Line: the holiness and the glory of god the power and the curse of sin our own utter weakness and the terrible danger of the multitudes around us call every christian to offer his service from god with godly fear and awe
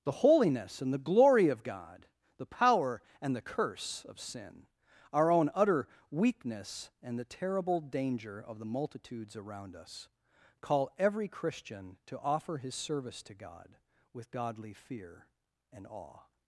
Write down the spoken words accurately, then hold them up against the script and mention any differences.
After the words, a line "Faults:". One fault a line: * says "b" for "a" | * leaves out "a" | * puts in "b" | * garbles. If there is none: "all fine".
the holiness and the glory of god the power and the curse of sin our own utter weakness and the terrible danger of the multitudes around us call every christian to offer his service to god with godly fear and awe
Faults:
* says "to" for "from"